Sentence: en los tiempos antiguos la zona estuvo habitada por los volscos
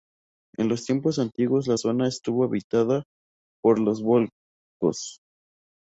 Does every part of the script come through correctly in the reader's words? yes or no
yes